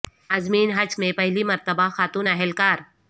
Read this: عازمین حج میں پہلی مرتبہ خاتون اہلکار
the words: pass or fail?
pass